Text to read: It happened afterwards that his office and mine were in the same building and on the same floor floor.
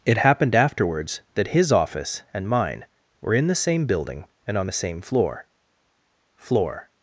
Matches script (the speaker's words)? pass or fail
pass